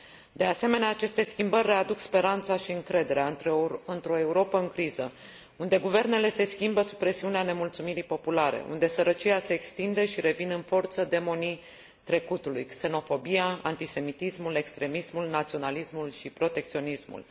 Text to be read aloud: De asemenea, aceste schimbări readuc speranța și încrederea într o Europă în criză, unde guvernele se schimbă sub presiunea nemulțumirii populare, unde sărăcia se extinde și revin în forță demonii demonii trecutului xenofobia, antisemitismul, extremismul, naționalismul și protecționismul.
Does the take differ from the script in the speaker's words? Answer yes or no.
yes